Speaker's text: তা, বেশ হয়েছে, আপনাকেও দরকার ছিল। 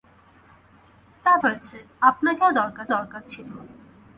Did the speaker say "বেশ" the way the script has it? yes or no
no